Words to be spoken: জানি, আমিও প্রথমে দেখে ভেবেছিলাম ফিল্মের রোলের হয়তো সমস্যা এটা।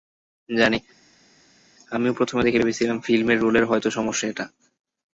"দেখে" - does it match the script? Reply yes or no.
yes